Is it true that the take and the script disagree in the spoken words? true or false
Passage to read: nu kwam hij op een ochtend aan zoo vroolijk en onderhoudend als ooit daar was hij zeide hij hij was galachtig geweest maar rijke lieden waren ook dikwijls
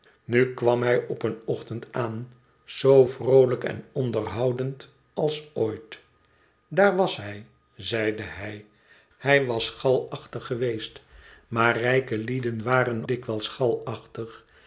true